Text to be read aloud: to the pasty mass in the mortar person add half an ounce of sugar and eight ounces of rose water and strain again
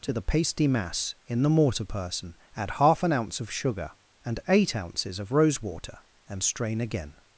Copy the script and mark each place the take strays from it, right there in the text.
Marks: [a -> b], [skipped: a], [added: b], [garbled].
to the pasty mass in the mortar person add half an ounce of sugar and eight ounces of rose water and strain again